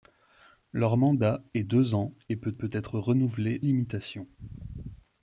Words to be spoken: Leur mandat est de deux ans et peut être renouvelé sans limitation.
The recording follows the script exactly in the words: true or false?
false